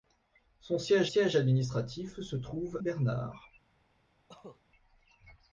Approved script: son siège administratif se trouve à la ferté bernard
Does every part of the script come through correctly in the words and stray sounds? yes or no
no